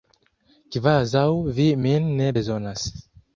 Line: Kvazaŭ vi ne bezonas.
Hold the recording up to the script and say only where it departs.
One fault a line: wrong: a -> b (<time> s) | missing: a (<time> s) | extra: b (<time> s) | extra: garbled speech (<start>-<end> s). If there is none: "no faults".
extra: min (1.9 s)